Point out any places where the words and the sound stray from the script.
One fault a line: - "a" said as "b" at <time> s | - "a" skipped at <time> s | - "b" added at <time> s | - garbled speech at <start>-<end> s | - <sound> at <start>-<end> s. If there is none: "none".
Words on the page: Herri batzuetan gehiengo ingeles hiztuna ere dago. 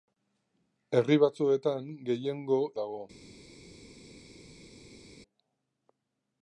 - "ingeles hiztuna ere" skipped at 2.6 s